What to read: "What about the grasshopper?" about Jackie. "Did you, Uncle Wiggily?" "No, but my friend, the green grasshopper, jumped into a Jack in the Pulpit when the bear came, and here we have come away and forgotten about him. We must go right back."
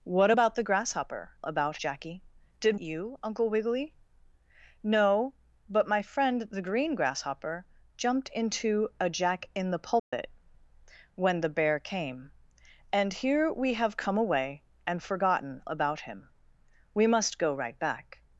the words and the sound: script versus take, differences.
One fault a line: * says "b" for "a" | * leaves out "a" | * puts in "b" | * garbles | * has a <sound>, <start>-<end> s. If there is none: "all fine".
* has a dropout, 10.0-10.1 s